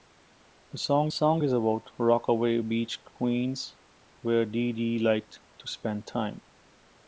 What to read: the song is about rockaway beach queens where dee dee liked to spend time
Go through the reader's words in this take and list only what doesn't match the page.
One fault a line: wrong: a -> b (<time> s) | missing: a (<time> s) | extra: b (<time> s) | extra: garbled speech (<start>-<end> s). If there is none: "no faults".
extra: song (1.1 s)